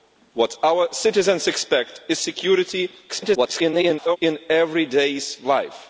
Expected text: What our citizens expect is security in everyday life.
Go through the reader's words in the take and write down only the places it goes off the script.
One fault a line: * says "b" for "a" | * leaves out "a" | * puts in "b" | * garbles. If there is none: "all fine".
* garbles